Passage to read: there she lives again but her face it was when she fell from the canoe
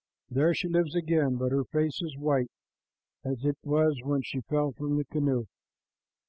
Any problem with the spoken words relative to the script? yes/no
yes